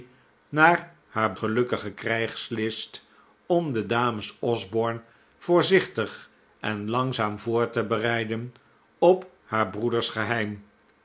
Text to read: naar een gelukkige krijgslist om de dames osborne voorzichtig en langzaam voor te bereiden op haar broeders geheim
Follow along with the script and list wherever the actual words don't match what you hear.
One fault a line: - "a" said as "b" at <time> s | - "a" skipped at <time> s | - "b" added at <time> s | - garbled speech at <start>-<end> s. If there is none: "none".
- "een" said as "haar" at 1.1 s